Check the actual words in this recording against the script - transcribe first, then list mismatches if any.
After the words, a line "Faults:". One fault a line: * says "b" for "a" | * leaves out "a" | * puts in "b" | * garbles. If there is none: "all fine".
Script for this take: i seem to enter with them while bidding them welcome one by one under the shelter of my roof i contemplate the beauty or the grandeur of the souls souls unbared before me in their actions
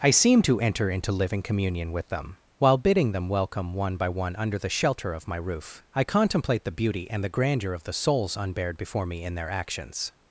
i seem to enter into living communion with them while bidding them welcome one by one under the shelter of my roof i contemplate the beauty and the grandeur of the souls unbared before me in their actions
Faults:
* puts in "into living communion"
* says "and" for "or"
* leaves out "souls"